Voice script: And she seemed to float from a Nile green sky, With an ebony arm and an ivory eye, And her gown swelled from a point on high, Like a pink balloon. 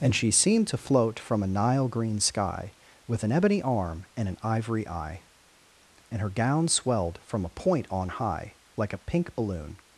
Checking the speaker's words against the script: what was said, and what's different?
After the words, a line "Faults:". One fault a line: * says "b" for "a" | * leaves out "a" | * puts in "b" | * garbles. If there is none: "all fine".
And she seemed to float from a Nile green sky, With an ebony arm and an ivory eye, And her gown swelled from a point on high, Like a pink balloon.
Faults:
all fine